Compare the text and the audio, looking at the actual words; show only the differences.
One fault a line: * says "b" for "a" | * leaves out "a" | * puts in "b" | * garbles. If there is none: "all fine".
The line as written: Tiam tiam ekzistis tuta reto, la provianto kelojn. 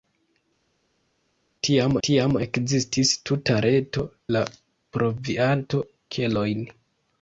all fine